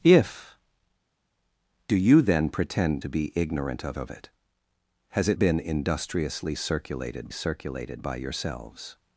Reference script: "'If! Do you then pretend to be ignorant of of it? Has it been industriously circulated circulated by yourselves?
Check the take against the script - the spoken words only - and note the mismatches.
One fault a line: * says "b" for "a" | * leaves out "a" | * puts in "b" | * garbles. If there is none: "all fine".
all fine